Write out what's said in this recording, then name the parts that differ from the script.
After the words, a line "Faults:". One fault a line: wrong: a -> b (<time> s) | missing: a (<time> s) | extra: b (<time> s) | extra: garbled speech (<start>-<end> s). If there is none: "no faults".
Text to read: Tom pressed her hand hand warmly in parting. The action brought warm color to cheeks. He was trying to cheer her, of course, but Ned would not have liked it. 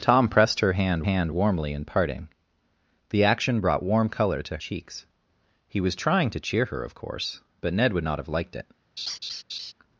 Tom pressed her hand hand warmly in parting. The action brought warm color to cheeks. He was trying to cheer her, of course, but Ned would not have liked it.
Faults:
no faults